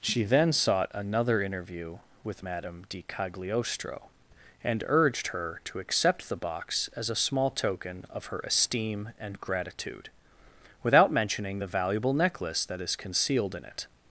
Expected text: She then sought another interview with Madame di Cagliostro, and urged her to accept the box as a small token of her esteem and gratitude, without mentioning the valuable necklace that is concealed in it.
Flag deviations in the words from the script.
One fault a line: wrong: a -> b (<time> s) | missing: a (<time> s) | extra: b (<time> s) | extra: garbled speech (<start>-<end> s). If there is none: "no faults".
no faults